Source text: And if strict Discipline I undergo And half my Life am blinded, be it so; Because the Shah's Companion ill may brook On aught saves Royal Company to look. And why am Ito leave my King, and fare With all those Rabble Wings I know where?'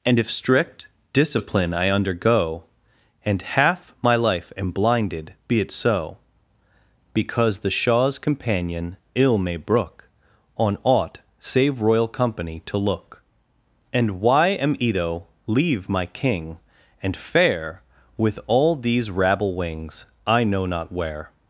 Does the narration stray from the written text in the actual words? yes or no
yes